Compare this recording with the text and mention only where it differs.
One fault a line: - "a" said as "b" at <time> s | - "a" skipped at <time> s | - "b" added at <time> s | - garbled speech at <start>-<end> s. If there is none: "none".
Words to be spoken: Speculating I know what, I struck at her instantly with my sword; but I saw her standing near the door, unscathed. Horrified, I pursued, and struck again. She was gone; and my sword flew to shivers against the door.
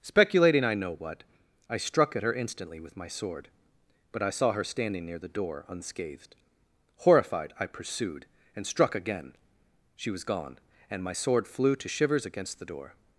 none